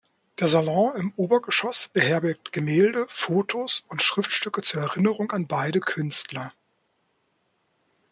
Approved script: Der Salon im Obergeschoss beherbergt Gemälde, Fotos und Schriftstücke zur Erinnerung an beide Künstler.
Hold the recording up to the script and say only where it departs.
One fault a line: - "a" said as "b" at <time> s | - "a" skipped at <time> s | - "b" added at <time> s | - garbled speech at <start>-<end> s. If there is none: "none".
none